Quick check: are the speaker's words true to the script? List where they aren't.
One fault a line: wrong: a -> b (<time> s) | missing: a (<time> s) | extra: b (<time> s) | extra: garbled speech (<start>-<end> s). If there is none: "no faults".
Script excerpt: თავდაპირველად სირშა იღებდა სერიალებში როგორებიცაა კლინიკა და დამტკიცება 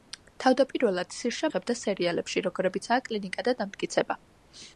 no faults